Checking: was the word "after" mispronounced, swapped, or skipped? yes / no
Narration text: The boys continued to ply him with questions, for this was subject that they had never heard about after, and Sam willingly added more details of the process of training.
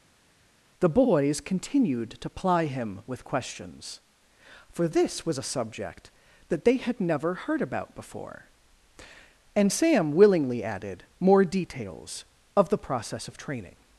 yes